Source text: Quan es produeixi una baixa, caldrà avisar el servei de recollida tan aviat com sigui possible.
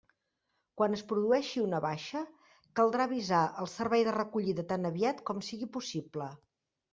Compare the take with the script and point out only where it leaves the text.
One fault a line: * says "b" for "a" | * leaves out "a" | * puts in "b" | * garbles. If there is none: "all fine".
all fine